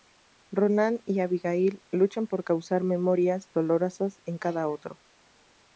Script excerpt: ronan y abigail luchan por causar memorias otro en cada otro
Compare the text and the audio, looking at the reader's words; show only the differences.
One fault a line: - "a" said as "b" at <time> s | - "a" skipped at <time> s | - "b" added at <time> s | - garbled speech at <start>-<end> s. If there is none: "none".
- "otro" said as "dolorosas" at 3.5 s